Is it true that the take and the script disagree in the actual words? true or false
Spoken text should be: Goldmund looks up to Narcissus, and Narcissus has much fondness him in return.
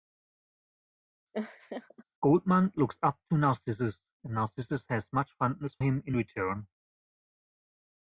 false